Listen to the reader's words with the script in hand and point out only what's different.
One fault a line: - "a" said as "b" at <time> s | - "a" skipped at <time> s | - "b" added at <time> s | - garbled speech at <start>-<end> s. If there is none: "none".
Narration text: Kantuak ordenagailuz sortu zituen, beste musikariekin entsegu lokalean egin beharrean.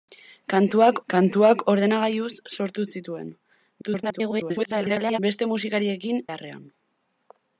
- "kantuak" added at 1.1 s
- garbled speech at 3.8-5.2 s
- "entsegu lokalean egin" skipped at 6.2 s